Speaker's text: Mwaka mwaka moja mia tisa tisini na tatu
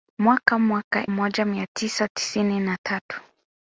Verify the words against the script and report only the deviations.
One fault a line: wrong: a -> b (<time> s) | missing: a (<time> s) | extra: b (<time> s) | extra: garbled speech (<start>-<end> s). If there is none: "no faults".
no faults